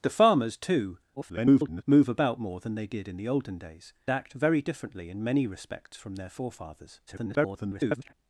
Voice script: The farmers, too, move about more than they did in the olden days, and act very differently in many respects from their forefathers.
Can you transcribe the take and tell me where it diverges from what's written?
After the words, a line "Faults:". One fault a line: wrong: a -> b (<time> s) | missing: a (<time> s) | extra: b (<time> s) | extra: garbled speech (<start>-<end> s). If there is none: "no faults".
The farmers, too, [garbled] move about more than they did in the olden days, act very differently in many respects from their forefathers. [garbled]
Faults:
extra: garbled speech (1.2-1.8 s)
missing: and (3.9 s)
extra: garbled speech (7.1-8.1 s)